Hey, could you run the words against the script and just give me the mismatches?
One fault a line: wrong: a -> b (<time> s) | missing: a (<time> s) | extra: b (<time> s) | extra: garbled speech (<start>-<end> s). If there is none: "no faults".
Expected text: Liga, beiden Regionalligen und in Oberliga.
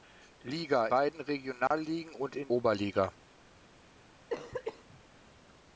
no faults